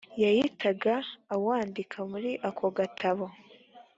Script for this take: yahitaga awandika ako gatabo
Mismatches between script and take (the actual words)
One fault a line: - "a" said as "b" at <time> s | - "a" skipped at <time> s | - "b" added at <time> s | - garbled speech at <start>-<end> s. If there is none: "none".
- "muri" added at 2.1 s